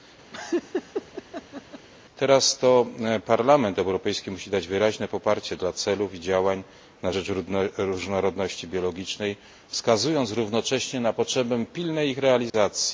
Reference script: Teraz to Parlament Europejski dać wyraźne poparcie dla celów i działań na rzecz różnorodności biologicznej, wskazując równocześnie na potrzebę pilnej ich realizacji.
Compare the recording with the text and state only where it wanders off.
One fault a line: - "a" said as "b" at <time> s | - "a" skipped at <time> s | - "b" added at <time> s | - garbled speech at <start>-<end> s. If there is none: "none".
- "musi" added at 4.3 s